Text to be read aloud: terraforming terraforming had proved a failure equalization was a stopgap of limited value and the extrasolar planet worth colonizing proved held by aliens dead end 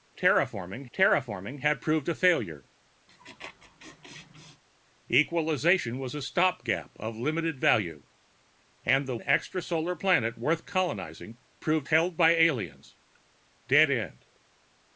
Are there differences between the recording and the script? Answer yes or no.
no